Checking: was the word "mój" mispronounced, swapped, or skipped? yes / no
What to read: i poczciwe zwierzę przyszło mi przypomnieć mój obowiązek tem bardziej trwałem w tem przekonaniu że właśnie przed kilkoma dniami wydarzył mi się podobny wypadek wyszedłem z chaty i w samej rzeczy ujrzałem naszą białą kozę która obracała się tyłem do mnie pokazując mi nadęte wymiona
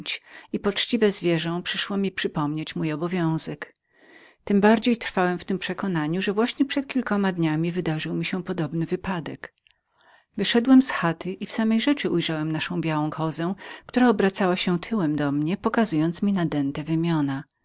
no